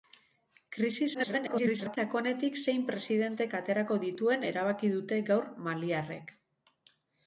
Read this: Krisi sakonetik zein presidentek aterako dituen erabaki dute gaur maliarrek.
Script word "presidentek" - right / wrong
right